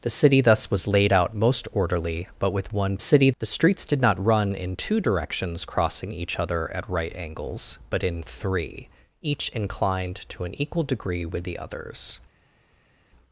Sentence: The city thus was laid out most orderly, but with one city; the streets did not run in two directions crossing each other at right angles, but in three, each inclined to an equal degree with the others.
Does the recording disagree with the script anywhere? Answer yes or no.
no